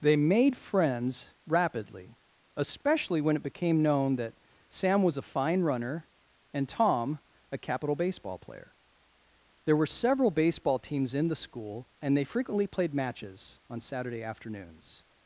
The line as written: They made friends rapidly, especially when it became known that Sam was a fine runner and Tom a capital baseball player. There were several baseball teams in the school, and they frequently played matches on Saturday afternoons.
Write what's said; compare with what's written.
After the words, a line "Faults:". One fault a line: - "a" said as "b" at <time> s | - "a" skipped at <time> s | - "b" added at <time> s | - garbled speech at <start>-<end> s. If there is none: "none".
They made friends rapidly, especially when it became known that Sam was a fine runner and Tom a capital baseball player. There were several baseball teams in the school, and they frequently played matches on Saturday afternoons.
Faults:
none